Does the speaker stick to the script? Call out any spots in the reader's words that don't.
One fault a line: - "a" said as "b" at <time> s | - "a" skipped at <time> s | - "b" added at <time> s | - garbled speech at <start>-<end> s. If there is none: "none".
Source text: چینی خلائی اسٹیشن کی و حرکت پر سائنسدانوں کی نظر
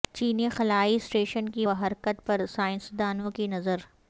none